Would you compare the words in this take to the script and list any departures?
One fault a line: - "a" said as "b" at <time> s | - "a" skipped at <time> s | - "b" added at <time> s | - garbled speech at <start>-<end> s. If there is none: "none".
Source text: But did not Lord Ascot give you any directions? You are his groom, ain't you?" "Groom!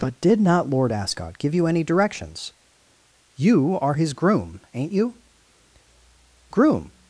none